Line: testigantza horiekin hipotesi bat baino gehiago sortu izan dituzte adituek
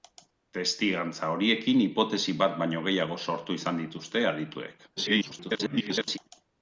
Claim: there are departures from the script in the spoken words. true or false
true